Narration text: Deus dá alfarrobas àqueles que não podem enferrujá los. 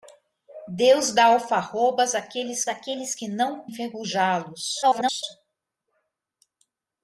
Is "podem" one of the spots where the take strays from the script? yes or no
yes